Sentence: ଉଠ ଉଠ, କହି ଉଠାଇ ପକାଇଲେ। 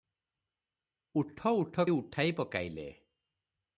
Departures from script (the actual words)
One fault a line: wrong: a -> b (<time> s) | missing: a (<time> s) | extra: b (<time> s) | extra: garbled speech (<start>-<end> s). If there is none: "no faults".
missing: କହି (1.9 s)